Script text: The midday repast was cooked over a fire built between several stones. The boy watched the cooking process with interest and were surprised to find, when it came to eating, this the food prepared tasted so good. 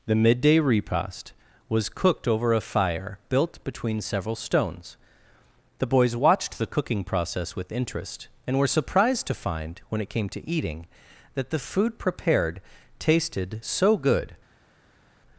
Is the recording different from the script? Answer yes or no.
yes